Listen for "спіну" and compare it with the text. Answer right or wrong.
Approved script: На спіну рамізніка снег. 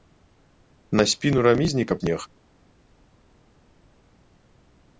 right